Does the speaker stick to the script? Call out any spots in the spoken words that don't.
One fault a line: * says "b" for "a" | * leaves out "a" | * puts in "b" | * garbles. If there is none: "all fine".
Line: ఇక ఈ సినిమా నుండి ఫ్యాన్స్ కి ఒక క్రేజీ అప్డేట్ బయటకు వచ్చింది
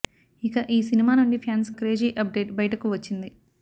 * leaves out "కి ఒక"